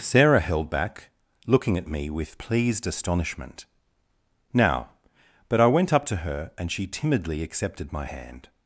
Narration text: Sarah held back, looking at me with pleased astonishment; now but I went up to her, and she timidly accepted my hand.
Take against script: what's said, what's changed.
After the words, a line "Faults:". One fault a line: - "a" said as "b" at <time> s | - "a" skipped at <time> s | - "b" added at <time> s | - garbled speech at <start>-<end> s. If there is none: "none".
Sarah held back, looking at me with pleased astonishment; now but I went up to her, and she timidly accepted my hand.
Faults:
none